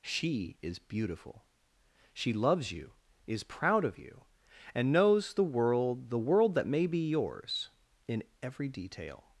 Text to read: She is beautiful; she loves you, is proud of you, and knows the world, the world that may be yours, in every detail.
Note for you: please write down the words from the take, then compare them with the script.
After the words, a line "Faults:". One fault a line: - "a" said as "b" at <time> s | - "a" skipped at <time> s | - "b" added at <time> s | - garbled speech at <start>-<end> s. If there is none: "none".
She is beautiful; she loves you, is proud of you, and knows the world, the world that may be yours, in every detail.
Faults:
none